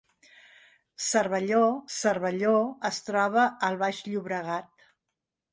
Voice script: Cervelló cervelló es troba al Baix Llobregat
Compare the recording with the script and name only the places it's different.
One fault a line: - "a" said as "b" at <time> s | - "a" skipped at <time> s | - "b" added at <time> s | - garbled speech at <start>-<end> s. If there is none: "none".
none